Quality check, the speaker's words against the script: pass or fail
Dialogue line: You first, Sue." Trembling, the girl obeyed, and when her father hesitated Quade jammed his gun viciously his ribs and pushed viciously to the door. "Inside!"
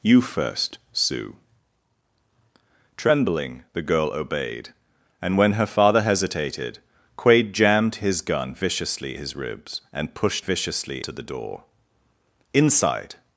pass